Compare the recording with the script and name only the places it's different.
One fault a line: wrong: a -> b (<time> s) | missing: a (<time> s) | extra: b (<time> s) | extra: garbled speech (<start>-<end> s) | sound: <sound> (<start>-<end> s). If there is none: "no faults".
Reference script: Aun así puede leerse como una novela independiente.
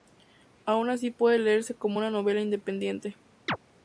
sound: chirp (3.5-3.6 s)